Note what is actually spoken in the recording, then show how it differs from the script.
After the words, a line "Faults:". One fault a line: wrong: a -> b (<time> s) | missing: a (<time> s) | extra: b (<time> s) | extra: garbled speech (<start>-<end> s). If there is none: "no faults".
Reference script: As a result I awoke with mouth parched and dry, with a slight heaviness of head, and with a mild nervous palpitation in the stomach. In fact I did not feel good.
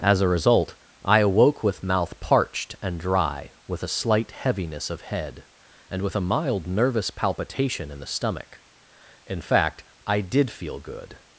As a result I awoke with mouth parched and dry, with a slight heaviness of head, and with a mild nervous palpitation in the stomach. In fact I did feel good.
Faults:
missing: not (10.5 s)